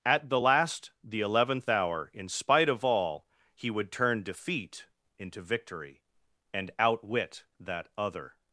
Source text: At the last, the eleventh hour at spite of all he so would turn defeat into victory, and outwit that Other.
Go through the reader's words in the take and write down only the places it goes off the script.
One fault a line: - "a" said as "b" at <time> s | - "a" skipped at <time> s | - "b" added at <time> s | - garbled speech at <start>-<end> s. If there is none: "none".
- "at" said as "in" at 2.1 s
- "so" skipped at 3.7 s